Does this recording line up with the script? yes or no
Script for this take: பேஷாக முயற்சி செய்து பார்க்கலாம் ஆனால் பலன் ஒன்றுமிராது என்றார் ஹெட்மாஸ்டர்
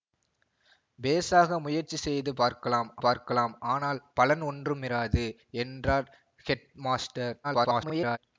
no